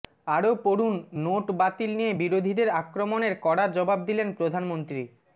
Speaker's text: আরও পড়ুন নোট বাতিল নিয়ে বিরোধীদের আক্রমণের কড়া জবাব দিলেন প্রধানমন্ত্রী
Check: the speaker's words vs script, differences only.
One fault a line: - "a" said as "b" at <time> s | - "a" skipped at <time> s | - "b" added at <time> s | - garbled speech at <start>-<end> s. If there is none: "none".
none